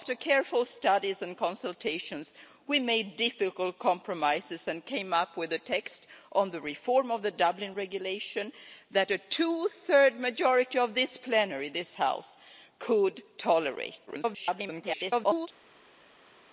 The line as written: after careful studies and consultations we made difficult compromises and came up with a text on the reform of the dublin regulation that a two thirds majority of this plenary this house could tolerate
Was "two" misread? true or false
false